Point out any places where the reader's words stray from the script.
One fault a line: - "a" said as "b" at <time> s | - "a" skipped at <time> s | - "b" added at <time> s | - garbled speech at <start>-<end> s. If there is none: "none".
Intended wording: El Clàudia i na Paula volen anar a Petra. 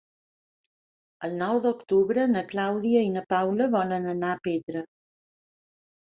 - "nou d'octubre na" added at 1.4 s